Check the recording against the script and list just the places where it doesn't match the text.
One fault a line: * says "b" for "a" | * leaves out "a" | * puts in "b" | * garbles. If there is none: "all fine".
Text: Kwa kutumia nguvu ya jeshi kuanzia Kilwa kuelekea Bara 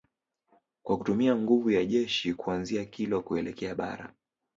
all fine